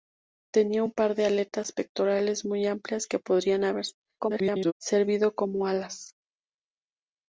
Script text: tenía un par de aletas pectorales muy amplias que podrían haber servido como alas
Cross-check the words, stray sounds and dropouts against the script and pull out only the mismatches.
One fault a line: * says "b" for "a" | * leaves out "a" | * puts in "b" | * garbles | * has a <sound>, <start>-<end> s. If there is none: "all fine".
* garbles